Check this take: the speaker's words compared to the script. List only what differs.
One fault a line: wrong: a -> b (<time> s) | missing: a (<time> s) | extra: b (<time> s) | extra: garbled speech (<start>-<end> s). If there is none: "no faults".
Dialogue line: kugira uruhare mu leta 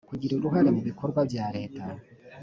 extra: bikorwa bya (0.9 s)